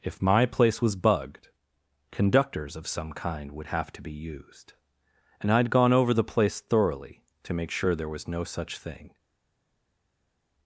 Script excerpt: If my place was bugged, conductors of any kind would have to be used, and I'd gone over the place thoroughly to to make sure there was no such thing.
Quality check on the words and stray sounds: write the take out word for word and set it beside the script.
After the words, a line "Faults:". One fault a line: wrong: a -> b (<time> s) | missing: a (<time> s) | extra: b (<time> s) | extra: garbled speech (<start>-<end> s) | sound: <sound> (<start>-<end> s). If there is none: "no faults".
If my place was bugged, conductors of some kind would have to be used, and I'd gone over the place thoroughly to make sure there was no such thing.
Faults:
wrong: any -> some (2.9 s)
missing: to (7.5 s)